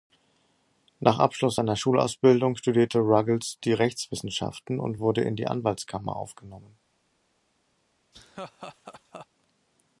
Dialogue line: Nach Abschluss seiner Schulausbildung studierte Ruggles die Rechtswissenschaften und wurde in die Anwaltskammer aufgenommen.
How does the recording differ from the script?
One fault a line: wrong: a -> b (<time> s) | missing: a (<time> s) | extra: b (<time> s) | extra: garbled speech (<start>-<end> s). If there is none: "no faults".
no faults